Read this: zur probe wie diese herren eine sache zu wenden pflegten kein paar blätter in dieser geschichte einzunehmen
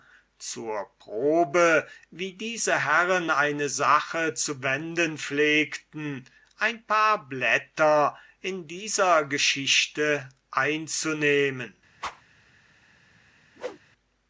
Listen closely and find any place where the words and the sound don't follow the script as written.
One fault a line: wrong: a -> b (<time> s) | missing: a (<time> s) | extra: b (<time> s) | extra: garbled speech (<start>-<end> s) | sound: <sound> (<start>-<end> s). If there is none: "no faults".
wrong: kein -> ein (6.6 s)
sound: whoosh (12.0-12.2 s)
sound: whoosh (13.6-13.8 s)